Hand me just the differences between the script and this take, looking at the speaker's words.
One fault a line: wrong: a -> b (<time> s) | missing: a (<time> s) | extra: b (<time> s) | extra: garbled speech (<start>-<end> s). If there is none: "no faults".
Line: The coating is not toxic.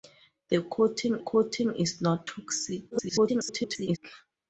extra: coating (1.2 s)
extra: garbled speech (2.9-4.0 s)